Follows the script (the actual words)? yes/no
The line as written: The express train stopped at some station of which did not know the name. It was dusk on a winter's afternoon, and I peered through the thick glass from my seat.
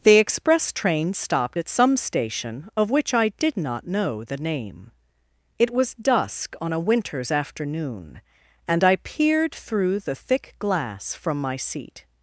no